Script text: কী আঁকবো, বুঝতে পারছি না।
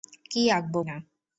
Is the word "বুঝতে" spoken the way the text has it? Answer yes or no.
no